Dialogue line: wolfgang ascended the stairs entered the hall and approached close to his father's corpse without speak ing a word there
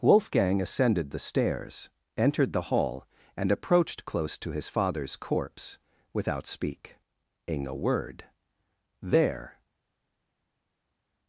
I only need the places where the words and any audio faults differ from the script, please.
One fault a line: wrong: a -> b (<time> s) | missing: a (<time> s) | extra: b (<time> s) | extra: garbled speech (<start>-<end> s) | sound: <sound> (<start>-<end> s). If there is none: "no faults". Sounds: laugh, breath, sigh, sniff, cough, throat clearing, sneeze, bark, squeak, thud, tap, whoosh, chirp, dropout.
no faults